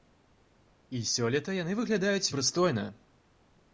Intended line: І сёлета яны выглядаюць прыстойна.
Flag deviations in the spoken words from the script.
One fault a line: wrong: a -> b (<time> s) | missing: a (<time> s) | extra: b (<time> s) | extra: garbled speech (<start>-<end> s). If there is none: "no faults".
no faults